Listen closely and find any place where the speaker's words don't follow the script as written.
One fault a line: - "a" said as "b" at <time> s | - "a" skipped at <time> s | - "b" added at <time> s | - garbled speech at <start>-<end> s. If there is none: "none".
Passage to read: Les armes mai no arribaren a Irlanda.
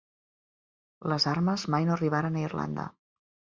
none